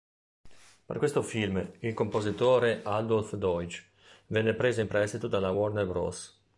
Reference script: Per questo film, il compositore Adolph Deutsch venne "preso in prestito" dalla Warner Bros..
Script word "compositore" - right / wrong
right